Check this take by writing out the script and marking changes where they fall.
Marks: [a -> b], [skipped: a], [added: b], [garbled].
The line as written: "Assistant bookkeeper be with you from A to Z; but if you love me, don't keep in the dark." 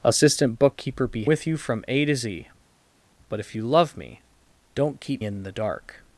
"Assistant bookkeeper be with you from A to Z; but if you love me, don't keep in the dark."